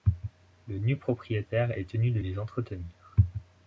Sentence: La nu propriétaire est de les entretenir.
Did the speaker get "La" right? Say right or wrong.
wrong